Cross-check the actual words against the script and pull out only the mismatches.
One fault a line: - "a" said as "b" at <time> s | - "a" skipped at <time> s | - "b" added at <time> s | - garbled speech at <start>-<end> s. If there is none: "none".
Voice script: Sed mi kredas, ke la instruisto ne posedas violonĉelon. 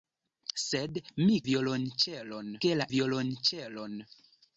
- "kredas" said as "violonĉelon" at 1.5 s
- "instruisto ne posedas" skipped at 2.8 s